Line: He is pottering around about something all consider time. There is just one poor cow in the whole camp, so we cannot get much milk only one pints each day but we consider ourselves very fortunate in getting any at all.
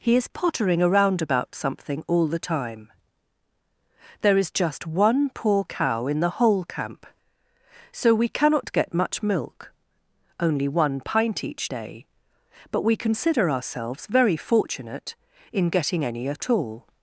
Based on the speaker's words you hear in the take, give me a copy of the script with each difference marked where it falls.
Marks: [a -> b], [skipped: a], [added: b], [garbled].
He is pottering around about something all [consider -> the] time. There is just one poor cow in the whole camp, so we cannot get much milk only one [pints -> pint] each day but we consider ourselves very fortunate in getting any at all.